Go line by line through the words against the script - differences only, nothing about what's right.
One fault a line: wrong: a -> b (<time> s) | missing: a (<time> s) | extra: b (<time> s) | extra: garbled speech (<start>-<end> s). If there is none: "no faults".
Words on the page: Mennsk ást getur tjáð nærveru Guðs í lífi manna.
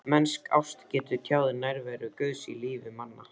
no faults